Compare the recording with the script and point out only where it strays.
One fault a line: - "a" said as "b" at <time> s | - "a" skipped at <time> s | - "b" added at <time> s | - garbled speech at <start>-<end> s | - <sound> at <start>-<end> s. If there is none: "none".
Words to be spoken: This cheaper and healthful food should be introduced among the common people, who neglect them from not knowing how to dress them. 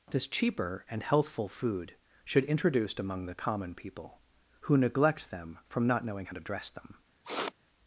- "be" skipped at 2.4 s
- sniff at 7.2-7.5 s